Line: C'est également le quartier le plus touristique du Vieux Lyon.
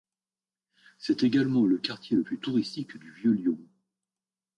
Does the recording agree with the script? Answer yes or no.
yes